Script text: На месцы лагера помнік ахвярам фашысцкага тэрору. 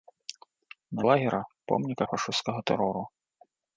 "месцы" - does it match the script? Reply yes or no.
no